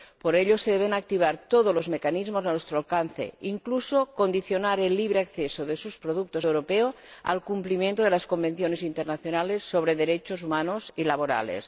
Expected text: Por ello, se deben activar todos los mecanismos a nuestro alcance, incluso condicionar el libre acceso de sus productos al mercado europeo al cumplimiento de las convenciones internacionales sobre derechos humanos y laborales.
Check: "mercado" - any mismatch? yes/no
yes